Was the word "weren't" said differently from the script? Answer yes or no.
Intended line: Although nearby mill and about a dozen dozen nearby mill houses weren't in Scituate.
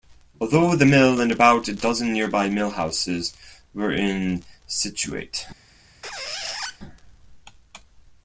yes